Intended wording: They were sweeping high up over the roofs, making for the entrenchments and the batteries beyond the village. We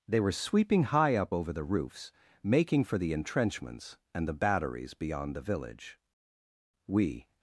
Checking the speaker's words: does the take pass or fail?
pass